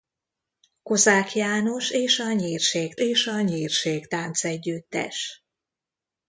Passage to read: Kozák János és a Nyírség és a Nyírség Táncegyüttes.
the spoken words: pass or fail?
pass